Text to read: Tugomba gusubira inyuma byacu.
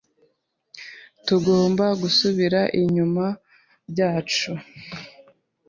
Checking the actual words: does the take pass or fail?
pass